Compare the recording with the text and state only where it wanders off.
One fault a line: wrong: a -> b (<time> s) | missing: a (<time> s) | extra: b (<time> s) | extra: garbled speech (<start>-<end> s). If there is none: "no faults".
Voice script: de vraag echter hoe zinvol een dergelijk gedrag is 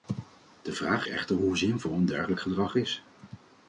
no faults